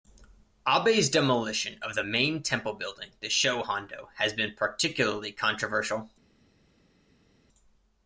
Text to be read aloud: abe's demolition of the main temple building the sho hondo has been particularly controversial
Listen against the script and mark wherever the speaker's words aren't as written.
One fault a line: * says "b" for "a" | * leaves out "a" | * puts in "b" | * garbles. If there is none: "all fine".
all fine